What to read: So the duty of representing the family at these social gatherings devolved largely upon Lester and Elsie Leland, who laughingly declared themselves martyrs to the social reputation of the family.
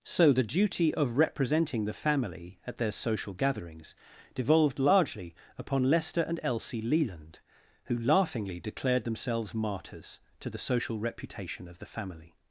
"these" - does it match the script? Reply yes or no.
no